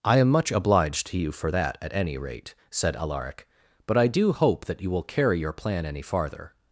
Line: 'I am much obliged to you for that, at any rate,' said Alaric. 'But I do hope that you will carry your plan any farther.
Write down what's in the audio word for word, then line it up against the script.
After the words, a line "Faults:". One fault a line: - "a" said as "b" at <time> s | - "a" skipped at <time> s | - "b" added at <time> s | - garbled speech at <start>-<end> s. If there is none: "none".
'I am much obliged to you for that, at any rate,' said Alaric. 'But I do hope that you will carry your plan any farther.
Faults:
none